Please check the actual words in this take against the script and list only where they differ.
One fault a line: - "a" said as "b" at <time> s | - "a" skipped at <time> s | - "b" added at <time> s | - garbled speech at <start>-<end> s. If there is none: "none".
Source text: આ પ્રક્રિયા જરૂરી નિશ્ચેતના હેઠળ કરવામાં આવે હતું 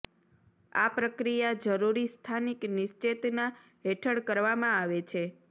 - "સ્થાનિક" added at 2.1 s
- "હતું" said as "છે" at 5.1 s